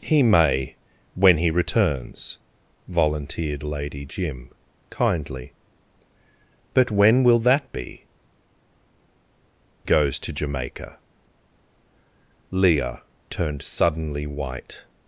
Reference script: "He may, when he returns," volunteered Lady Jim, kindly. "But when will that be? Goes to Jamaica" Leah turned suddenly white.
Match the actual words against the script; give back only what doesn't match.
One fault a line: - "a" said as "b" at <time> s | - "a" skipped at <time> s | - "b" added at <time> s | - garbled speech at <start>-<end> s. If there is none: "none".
none